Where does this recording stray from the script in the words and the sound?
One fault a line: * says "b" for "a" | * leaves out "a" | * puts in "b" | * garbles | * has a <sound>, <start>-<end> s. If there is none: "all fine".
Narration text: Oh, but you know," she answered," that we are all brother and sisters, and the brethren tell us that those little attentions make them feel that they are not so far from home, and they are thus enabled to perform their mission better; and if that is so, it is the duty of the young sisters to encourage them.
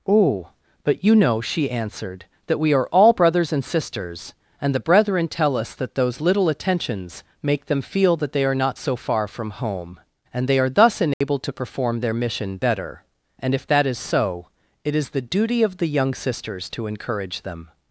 * says "brothers" for "brother"
* has a dropout, 11.1-11.2 s